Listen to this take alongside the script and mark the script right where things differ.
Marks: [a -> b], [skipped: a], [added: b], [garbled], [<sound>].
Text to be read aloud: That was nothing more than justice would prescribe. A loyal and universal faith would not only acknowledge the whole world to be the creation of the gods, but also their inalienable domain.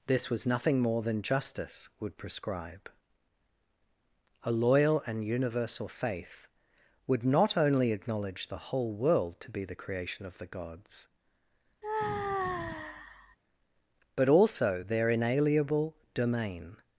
[That -> This] was nothing more than justice would prescribe. A loyal and universal faith would not only acknowledge the whole world to be the creation of the gods, [sigh] but also their inalienable domain.